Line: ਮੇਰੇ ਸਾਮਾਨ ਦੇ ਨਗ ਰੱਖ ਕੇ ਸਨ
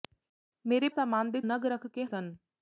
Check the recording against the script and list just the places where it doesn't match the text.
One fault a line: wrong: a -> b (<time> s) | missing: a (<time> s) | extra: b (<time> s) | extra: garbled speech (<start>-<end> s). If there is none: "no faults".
no faults